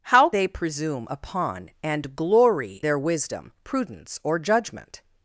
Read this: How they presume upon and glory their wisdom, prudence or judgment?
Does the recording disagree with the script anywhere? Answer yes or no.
no